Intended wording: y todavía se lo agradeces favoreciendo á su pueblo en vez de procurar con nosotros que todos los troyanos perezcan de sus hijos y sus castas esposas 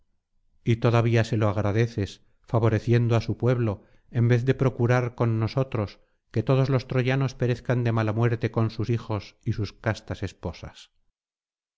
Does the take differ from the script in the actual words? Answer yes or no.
yes